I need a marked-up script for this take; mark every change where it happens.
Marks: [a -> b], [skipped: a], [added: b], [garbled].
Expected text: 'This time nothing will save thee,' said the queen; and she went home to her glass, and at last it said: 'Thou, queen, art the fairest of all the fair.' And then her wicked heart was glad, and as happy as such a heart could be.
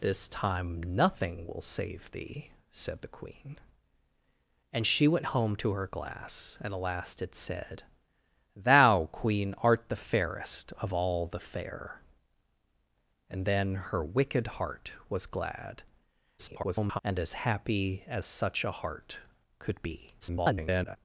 'This time nothing will save thee,' said the queen; and she went home to her glass, and at last it said: 'Thou, queen, art the fairest of all the fair.' And then her wicked heart was glad, [garbled] and as happy as such a heart could be. [garbled]